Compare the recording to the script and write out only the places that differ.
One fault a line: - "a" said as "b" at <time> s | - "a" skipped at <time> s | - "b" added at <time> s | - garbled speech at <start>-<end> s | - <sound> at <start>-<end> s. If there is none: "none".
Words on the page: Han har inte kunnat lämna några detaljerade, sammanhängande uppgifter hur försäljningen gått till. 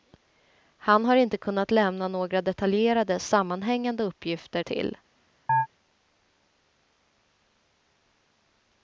- "hur försäljningen gått" skipped at 4.6 s
- chirp at 5.5-5.7 s